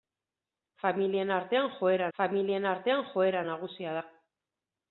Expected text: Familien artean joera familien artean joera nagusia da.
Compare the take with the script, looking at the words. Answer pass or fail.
pass